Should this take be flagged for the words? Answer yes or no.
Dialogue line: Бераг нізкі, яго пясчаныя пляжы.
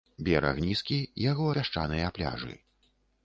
no